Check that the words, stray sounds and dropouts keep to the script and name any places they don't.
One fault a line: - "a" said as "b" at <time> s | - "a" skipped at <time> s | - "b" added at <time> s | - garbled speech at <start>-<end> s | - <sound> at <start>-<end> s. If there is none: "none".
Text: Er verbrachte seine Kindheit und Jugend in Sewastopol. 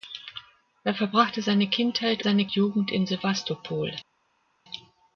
- "und" said as "seine" at 2.2 s